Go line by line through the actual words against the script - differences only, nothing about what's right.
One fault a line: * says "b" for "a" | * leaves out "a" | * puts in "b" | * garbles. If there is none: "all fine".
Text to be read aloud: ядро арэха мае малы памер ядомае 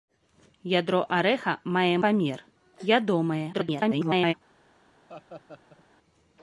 * leaves out "малы"
* garbles